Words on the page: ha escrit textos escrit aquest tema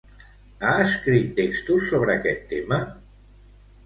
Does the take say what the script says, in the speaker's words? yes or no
no